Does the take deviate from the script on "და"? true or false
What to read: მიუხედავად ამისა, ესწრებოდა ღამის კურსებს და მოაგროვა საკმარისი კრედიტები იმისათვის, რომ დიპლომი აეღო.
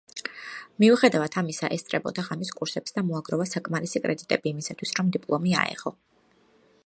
false